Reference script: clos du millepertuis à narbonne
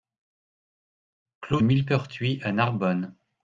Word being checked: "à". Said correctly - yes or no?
yes